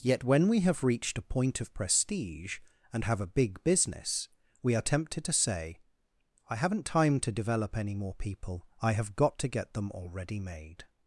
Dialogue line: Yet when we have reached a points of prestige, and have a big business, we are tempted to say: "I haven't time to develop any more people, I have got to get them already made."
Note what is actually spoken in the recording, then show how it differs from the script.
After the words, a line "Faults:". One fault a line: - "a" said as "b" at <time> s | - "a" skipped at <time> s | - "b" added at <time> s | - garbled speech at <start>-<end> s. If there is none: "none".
Yet when we have reached a point of prestige, and have a big business, we are tempted to say: "I haven't time to develop any more people, I have got to get them already made."
Faults:
- "points" said as "point" at 1.2 s